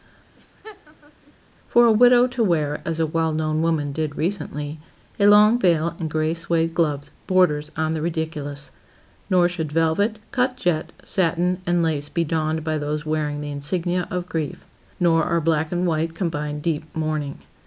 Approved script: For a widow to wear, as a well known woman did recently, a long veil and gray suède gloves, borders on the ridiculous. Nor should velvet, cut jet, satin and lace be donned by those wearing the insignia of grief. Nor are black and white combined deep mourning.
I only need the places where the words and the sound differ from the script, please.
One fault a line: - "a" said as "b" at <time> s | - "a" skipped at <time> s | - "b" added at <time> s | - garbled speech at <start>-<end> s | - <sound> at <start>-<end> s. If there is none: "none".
- laugh at 0.4-1.3 s